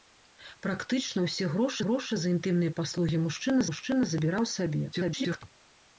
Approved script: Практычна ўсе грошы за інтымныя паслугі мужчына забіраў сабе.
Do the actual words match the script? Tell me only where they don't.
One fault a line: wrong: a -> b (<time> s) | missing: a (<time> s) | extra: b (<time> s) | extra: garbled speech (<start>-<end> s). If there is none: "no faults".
extra: грошы (1.8 s)
extra: мужчына (3.7 s)
extra: garbled speech (4.9-5.4 s)